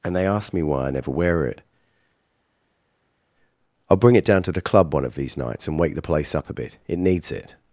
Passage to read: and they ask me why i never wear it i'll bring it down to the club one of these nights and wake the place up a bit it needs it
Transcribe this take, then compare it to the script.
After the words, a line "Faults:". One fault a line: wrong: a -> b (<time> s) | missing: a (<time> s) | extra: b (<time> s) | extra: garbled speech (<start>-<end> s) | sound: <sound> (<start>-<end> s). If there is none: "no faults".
and they ask me why i never wear it i'll bring it down to the club one of these nights and wake the place up a bit it needs it
Faults:
no faults